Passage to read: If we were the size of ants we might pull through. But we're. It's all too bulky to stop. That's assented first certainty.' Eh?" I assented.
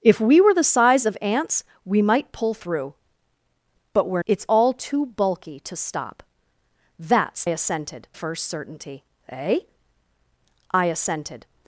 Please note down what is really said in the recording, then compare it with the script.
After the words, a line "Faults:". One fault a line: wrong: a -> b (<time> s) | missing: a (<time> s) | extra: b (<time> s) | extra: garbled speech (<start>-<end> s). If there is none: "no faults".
If we were the size of ants we might pull through. But we're. It's all too bulky to stop. That's assented first certainty.' Eh?" I assented.
Faults:
no faults